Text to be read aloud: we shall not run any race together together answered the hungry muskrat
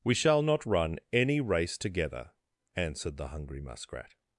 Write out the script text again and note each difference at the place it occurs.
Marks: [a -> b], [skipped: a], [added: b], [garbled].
we shall not run any race together [skipped: together] answered the hungry muskrat